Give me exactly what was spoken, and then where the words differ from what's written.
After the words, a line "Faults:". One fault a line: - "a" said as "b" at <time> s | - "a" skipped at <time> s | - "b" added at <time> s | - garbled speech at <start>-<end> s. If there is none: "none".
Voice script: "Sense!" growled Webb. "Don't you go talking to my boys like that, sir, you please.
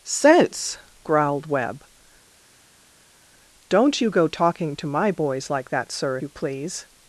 "Sense!" growled Webb. "Don't you go talking to my boys like that, sir, you please.
Faults:
none